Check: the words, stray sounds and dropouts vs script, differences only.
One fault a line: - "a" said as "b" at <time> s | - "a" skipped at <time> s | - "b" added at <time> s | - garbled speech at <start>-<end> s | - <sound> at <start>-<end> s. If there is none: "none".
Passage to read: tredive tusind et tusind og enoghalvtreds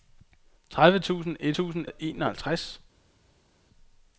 none